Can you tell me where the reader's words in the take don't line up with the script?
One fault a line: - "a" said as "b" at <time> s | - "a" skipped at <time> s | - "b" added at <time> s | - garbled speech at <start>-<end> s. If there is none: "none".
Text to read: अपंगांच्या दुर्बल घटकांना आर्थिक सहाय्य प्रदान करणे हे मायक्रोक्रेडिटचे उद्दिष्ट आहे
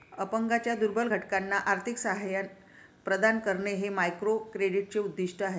none